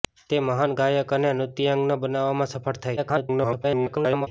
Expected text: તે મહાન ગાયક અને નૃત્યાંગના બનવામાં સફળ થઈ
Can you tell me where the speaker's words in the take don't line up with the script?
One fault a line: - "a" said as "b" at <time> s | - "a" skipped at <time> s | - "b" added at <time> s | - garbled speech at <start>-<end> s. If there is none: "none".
- garbled speech at 3.0-4.3 s